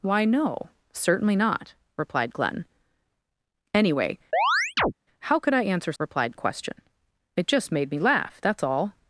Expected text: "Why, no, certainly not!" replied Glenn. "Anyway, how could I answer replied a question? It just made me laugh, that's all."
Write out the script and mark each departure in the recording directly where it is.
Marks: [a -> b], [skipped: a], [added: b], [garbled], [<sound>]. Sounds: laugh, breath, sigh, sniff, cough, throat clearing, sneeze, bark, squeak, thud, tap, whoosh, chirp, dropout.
"Why, no, certainly not!" replied Glenn. "Anyway, [chirp] how could I answer replied a question? It just made me laugh, that's all."